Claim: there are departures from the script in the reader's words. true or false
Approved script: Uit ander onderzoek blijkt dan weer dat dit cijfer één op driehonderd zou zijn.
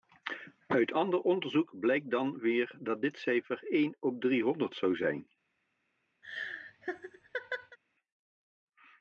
false